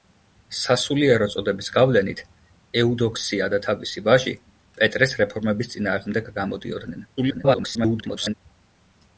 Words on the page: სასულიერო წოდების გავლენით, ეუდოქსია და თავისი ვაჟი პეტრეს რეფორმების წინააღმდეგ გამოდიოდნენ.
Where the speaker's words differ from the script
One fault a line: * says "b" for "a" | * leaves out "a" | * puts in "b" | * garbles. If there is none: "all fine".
* garbles